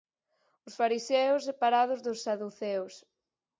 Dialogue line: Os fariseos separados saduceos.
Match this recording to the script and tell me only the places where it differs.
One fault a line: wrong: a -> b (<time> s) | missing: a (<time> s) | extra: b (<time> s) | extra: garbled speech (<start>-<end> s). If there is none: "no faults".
extra: dos (2.0 s)